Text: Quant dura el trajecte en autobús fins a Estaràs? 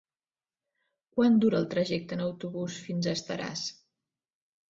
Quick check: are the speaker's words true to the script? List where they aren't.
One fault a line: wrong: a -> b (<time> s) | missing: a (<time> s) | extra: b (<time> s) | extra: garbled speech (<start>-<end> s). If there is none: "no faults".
no faults